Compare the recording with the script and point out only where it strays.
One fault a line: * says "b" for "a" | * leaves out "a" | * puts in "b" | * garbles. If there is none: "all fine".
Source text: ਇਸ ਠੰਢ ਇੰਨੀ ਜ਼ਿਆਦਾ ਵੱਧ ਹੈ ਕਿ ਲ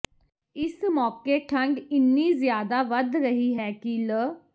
* puts in "ਮੌਕੇ"
* puts in "ਰਹੀ"